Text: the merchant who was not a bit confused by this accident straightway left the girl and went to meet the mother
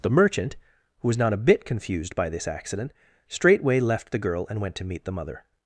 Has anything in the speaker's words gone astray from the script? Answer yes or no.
no